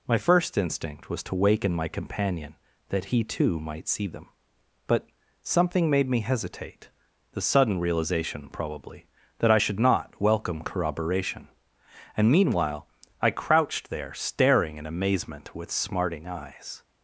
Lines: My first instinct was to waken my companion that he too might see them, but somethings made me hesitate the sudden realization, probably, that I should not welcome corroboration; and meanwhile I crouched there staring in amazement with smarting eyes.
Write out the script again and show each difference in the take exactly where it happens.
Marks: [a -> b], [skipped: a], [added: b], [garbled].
My first instinct was to waken my companion that he too might see them, but [somethings -> something] made me hesitate the sudden realization, probably, that I should not welcome corroboration; and meanwhile I crouched there staring in amazement with smarting eyes.